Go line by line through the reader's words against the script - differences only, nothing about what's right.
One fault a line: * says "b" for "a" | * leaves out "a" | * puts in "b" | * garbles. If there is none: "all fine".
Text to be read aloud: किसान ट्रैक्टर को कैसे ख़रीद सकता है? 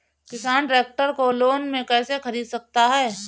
* puts in "लोन में"